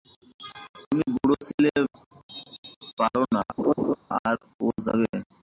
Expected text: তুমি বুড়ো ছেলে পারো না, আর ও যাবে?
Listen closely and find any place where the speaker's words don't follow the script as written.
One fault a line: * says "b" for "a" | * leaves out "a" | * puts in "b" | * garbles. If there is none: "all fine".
all fine